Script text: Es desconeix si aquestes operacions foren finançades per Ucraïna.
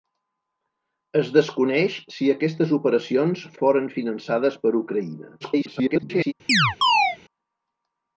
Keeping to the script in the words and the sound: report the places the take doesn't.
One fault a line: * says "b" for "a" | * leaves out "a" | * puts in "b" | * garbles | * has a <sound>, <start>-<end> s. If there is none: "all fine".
* garbles
* has a chirp, 6.5-7.2 s